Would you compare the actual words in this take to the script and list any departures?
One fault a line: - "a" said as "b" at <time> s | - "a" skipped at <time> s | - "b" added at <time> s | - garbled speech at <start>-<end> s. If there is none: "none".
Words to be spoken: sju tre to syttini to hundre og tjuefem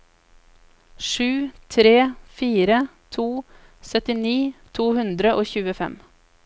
- "fire" added at 2.4 s